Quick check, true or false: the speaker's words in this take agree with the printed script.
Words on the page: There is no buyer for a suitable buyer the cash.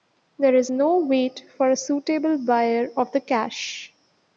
false